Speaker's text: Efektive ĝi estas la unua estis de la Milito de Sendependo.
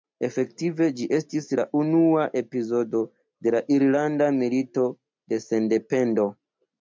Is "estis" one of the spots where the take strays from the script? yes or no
yes